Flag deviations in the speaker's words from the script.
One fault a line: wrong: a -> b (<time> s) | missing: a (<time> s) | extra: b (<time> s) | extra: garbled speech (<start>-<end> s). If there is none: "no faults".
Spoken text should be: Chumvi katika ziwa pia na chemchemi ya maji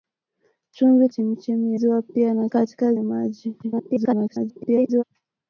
wrong: katika -> chemchemi (1.1 s)
wrong: chemchemi -> katika (2.5 s)
extra: garbled speech (3.6-5.0 s)